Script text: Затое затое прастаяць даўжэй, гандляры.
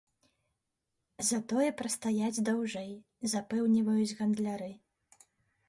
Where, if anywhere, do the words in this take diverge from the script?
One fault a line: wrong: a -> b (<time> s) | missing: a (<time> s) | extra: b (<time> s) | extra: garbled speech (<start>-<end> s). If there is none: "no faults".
missing: затое (1.7 s)
extra: запэўніваюць (3.4 s)